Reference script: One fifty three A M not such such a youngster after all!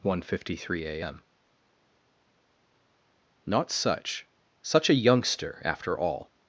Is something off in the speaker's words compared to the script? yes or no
no